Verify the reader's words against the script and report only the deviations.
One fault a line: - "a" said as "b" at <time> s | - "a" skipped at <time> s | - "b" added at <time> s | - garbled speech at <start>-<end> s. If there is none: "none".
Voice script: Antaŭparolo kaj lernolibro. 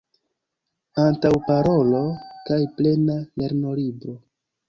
- "plena" added at 2.8 s